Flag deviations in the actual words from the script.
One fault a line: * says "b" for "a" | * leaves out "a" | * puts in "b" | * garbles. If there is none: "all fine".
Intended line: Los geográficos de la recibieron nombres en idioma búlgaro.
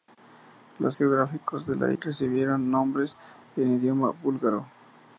all fine